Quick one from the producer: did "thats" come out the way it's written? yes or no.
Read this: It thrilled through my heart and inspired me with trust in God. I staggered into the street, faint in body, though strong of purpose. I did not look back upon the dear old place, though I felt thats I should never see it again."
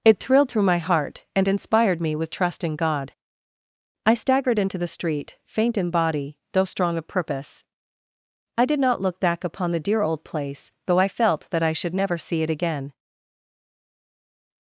no